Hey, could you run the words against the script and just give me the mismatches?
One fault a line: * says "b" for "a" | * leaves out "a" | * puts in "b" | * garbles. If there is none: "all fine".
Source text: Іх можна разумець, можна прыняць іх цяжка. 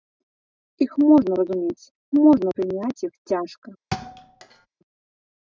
all fine